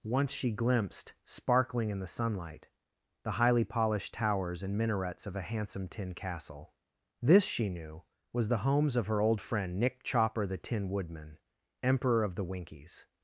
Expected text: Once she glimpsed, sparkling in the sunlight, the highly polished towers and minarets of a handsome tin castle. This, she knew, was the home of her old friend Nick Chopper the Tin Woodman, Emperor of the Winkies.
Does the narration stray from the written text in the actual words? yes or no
yes